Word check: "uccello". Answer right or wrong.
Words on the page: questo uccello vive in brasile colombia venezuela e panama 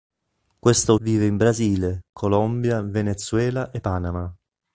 wrong